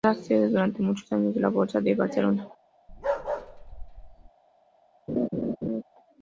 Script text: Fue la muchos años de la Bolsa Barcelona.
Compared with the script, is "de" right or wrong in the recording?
right